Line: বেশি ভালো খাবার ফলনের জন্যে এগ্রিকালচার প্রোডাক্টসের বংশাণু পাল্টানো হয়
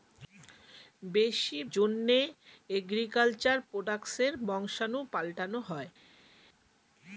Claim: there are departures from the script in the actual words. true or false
true